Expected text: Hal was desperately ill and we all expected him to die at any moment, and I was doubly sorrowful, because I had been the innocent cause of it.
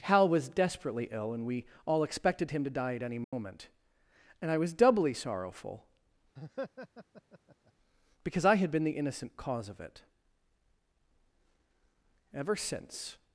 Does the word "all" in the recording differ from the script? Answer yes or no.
no